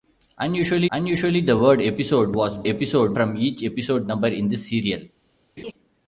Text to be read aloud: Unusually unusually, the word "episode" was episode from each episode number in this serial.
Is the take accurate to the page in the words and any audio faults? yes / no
no